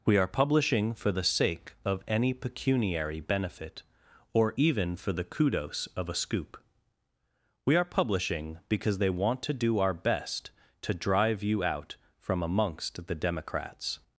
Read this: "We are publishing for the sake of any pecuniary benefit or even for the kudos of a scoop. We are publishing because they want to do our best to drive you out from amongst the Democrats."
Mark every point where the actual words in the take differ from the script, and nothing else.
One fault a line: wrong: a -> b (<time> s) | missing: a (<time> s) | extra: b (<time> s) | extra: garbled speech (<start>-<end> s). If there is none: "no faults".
no faults